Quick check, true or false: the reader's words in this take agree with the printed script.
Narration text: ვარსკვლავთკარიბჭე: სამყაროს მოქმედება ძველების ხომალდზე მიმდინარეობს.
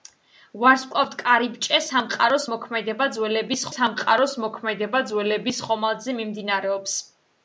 false